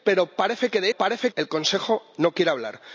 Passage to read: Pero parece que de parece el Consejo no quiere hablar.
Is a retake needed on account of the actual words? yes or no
no